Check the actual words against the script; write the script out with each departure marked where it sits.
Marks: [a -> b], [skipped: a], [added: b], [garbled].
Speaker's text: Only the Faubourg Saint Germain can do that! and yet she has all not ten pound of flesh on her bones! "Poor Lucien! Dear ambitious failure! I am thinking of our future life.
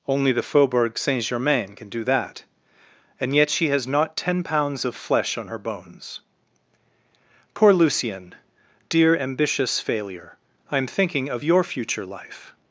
Only the Faubourg Saint Germain can do that! and yet she has [skipped: all] not ten [pound -> pounds] of flesh on her bones! "Poor Lucien! Dear ambitious failure! I am thinking of [our -> your] future life.